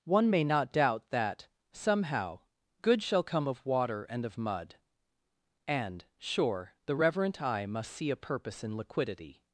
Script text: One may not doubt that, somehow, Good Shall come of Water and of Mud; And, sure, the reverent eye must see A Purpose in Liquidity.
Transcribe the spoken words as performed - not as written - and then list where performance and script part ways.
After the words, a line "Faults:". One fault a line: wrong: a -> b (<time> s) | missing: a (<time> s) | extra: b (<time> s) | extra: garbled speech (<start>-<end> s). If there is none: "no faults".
One may not doubt that, somehow, Good Shall come of Water and of Mud; And, sure, the reverent eye must see A Purpose in Liquidity.
Faults:
no faults